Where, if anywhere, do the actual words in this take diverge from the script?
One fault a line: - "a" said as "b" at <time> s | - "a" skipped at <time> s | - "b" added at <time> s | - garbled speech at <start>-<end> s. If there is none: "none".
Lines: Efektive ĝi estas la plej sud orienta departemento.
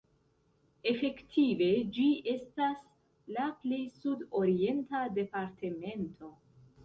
none